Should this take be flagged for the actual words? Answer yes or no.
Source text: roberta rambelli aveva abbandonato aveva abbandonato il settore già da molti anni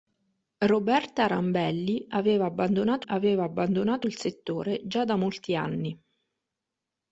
no